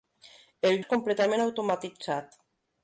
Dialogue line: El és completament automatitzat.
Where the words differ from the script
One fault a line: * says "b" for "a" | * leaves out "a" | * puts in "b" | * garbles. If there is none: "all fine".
all fine